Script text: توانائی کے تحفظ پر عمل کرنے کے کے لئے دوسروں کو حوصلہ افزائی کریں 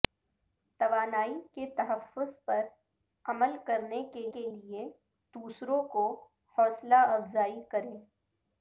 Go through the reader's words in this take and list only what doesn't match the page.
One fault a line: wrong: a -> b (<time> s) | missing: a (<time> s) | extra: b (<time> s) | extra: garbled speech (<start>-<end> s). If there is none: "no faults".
no faults